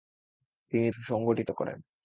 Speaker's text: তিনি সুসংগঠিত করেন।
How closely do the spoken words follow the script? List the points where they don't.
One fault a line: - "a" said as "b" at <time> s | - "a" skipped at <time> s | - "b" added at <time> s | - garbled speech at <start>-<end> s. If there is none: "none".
none